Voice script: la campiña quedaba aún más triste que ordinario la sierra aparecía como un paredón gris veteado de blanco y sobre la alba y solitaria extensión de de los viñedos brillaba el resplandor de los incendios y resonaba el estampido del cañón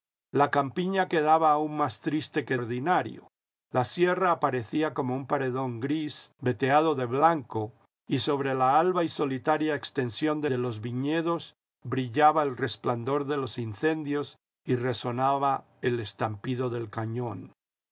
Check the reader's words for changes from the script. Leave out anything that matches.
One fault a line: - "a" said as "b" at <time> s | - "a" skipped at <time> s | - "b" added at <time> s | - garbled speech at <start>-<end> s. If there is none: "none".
none